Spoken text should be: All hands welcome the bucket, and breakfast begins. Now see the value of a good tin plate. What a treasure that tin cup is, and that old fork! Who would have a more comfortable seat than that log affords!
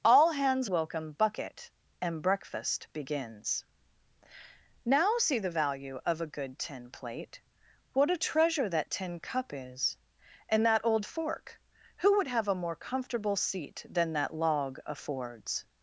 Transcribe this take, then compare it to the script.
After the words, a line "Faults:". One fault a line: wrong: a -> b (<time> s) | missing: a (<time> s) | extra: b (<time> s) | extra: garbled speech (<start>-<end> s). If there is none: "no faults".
All hands welcome bucket, and breakfast begins. Now see the value of a good tin plate. What a treasure that tin cup is, and that old fork! Who would have a more comfortable seat than that log affords!
Faults:
missing: the (1.1 s)